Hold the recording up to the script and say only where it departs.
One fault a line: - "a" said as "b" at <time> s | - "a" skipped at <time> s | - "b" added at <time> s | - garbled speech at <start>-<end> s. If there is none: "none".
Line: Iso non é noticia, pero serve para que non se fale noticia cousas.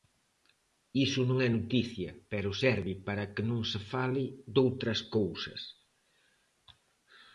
- "noticia" said as "doutras" at 4.6 s